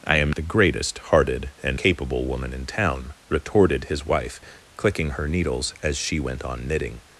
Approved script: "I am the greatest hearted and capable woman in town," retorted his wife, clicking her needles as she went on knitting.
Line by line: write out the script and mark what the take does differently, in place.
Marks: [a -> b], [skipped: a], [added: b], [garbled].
"I am the greatest hearted and capable woman in town," retorted his wife, clicking her needles as she went on knitting.